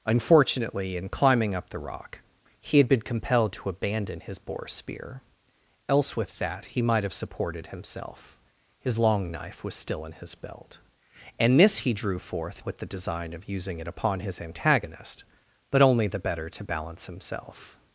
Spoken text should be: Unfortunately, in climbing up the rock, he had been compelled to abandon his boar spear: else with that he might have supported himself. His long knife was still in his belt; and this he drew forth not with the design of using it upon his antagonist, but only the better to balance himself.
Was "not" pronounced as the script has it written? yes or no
no